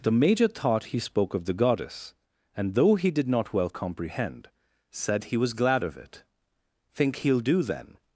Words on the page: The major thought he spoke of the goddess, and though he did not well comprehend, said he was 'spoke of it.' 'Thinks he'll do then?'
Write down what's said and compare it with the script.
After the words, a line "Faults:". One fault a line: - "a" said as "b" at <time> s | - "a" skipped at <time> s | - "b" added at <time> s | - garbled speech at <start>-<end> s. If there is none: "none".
The major thought he spoke of the goddess, and though he did not well comprehend, said he was 'glad of it.' 'Think he'll do then?'
Faults:
- "spoke" said as "glad" at 5.5 s
- "Thinks" said as "Think" at 6.9 s